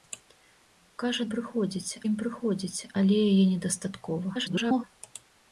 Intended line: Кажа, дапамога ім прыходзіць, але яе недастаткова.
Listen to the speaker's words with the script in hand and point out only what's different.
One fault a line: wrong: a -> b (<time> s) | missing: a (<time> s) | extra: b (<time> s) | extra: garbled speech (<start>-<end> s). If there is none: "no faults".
wrong: дапамога -> прыходзіць (1.3 s)
extra: garbled speech (4.3-4.8 s)